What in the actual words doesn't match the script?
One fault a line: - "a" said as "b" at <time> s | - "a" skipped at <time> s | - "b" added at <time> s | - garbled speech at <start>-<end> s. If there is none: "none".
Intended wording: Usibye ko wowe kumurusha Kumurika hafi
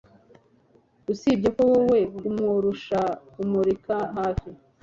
none